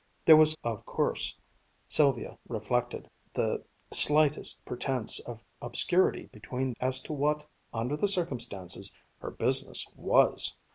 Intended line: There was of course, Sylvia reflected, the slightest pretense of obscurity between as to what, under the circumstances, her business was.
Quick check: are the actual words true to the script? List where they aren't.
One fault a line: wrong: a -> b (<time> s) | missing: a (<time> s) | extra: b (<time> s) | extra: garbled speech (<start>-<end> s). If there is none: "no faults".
no faults